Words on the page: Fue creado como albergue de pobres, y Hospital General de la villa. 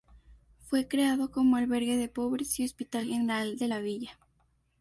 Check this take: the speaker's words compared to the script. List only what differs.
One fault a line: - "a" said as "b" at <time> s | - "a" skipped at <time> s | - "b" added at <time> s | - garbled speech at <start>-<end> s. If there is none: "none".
none